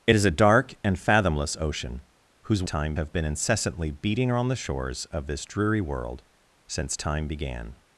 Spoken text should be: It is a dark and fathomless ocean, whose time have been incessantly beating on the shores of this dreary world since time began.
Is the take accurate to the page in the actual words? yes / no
yes